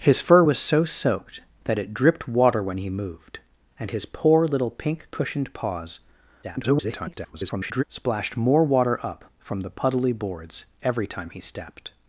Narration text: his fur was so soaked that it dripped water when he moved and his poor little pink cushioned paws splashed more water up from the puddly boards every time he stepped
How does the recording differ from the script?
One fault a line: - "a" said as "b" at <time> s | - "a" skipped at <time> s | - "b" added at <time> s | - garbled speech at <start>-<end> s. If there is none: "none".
- garbled speech at 6.4-7.8 s